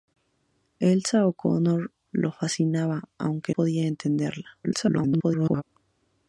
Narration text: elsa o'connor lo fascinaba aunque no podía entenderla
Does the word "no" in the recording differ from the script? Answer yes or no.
yes